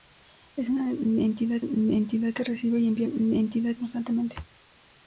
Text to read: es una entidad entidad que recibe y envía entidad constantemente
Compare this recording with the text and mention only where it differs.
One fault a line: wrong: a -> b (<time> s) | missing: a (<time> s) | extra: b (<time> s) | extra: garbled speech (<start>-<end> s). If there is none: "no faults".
no faults